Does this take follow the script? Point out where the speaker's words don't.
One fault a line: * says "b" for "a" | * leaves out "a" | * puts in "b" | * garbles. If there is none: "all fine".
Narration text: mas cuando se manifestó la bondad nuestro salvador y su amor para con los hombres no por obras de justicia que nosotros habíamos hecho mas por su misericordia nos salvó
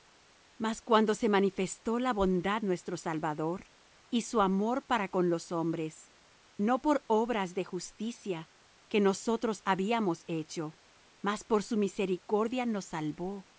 all fine